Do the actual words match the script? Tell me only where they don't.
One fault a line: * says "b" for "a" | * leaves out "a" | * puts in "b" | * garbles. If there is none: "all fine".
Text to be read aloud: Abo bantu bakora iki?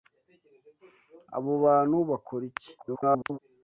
* garbles